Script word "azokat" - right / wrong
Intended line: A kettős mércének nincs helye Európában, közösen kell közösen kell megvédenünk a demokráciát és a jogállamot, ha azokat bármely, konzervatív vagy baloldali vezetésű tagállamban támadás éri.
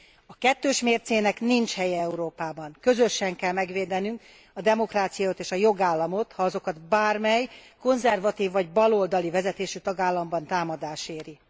right